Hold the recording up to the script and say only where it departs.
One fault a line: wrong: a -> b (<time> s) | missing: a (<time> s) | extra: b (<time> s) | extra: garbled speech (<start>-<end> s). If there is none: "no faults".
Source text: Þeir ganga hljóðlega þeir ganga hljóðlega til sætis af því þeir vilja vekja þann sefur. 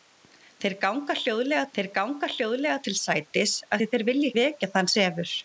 no faults